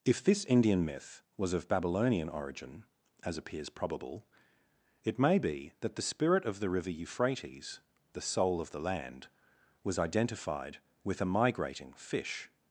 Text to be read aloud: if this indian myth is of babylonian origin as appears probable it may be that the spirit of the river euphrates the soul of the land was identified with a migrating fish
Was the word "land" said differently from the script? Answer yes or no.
no